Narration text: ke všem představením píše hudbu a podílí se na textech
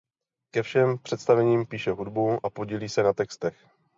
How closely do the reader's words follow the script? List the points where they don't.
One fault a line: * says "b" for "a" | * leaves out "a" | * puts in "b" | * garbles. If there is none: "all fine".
all fine